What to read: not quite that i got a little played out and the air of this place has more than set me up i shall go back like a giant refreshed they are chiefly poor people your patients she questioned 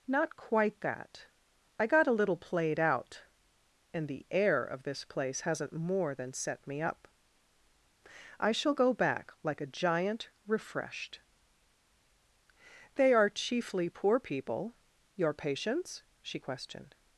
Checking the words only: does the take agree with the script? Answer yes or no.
no